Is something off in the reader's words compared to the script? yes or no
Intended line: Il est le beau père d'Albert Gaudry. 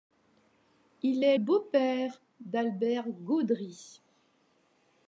yes